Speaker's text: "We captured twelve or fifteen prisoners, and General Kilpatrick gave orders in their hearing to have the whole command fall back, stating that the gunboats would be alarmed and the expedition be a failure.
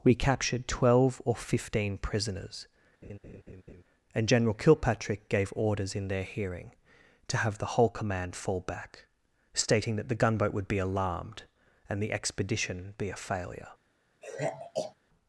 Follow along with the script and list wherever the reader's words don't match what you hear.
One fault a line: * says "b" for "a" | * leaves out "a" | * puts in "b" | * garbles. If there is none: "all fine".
* says "gunboat" for "gunboats"